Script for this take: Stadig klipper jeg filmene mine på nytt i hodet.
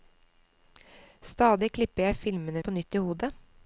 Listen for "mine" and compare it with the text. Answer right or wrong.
wrong